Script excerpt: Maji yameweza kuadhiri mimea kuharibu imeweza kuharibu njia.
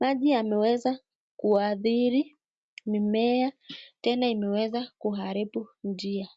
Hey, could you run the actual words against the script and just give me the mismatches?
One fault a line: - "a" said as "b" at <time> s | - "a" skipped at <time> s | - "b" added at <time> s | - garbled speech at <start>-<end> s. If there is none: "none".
- "kuharibu" said as "tena" at 4.0 s